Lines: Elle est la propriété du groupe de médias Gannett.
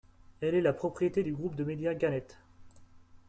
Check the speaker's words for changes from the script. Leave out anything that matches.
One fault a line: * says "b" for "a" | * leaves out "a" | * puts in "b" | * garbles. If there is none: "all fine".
all fine